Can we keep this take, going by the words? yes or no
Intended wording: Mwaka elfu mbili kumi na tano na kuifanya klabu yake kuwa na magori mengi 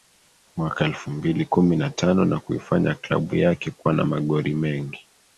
yes